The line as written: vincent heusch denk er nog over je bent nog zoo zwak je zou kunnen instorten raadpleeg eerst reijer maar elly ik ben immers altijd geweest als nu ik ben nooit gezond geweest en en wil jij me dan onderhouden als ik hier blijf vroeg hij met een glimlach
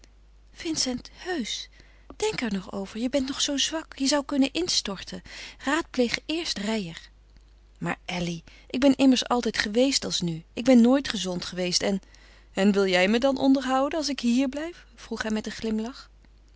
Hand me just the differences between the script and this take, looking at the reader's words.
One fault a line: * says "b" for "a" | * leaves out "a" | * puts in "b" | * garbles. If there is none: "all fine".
all fine